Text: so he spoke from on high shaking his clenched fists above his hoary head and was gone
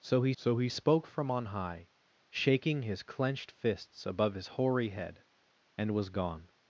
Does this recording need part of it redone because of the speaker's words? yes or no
yes